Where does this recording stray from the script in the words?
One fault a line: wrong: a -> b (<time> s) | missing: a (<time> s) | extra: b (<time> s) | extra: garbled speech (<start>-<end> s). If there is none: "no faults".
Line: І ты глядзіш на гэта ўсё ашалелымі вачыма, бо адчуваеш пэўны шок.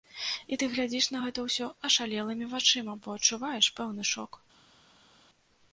no faults